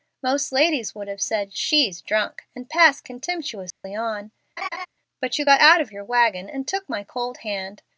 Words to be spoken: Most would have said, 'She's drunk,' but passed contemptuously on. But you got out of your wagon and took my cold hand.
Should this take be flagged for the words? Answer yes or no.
yes